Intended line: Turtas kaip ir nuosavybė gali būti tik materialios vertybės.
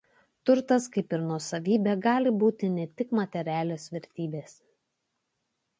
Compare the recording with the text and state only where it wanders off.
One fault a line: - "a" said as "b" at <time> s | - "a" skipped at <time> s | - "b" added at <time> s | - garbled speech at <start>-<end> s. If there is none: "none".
- "ne" added at 2.8 s